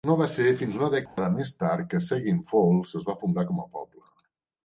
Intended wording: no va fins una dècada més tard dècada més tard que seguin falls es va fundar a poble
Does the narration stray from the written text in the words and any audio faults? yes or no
yes